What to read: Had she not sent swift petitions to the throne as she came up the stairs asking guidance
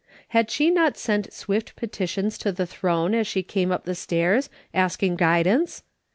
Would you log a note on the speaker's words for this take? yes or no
no